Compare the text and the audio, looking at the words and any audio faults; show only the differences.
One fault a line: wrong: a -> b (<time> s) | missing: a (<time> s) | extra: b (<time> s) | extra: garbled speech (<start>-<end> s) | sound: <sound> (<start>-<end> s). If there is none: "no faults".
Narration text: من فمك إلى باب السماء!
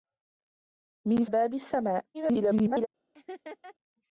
missing: فمك إلى (1.2 s)
extra: garbled speech (2.1-2.9 s)
sound: laugh (3.1-3.7 s)